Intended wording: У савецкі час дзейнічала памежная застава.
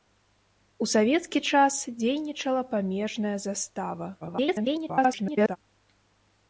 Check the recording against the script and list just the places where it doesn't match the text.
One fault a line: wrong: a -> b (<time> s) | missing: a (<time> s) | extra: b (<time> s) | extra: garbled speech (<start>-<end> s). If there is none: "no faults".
extra: garbled speech (4.2-5.6 s)